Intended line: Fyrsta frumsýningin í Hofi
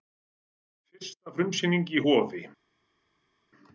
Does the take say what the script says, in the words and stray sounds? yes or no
yes